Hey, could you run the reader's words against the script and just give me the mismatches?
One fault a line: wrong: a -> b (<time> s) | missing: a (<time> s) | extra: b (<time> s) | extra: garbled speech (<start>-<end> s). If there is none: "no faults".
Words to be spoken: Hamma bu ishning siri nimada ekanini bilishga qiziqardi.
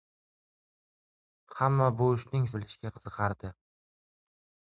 missing: siri nimada ekanini (2.5 s)